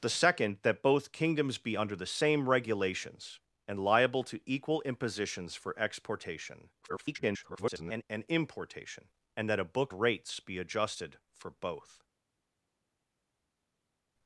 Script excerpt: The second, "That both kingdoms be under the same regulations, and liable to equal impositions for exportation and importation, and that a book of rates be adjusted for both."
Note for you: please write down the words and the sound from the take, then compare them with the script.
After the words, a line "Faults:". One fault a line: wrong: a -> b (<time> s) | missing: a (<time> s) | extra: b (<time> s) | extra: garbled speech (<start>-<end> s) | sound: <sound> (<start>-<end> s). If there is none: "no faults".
The second, "That both kingdoms be under the same regulations, and liable to equal impositions for exportation [garbled] and importation, and that a book rates be adjusted for both."
Faults:
extra: garbled speech (6.8-8.0 s)
missing: of (9.9 s)